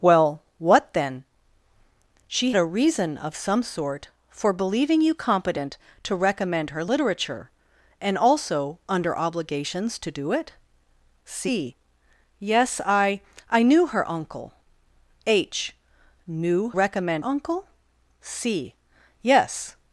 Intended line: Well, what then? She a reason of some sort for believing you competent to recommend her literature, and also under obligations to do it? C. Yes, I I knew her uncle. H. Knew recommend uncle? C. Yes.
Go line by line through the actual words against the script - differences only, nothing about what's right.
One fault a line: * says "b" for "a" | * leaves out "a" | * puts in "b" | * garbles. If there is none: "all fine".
all fine